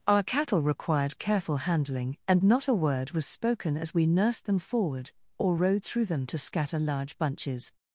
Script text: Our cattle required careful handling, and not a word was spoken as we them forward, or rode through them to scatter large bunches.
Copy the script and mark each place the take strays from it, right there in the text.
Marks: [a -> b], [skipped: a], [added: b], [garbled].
Our cattle required careful handling, and not a word was spoken as we [added: nursed] them forward, or rode through them to scatter large bunches.